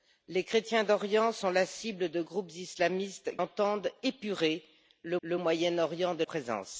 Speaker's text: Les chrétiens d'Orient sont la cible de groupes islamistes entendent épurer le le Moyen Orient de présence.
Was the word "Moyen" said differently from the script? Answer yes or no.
no